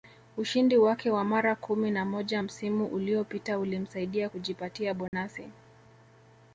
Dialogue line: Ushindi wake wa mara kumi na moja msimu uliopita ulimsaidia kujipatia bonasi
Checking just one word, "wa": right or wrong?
right